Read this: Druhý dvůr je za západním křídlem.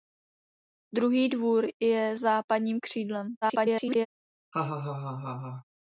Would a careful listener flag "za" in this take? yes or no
yes